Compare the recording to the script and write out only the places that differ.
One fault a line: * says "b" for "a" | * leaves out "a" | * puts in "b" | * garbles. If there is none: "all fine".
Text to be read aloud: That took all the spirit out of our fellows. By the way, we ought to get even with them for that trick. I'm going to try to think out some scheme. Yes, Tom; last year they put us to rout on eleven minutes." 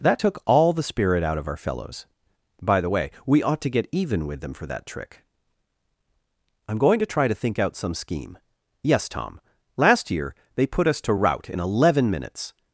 * says "in" for "on"